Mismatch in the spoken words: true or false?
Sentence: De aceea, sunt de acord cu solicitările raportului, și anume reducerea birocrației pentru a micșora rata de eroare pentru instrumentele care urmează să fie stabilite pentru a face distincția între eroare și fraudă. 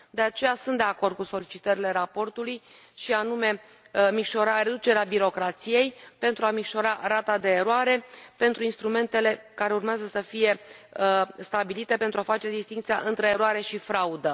false